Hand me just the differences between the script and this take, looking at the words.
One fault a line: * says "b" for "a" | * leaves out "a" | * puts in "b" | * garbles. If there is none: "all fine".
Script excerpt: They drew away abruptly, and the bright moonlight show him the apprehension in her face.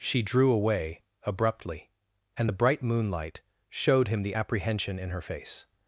* says "She" for "They"
* says "showed" for "show"